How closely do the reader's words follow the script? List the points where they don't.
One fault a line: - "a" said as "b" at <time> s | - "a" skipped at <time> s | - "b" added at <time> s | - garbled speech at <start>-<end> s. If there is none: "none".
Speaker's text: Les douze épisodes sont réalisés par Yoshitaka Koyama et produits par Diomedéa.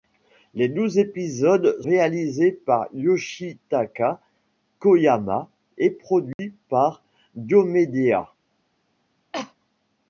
- "sont" skipped at 1.8 s